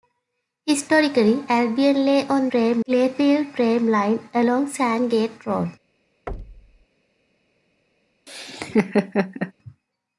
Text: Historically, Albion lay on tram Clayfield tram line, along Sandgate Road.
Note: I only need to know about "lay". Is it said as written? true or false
true